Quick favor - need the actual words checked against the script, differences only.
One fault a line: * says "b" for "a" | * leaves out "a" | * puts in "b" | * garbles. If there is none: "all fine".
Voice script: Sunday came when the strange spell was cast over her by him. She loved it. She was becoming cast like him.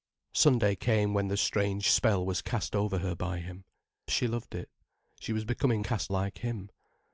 all fine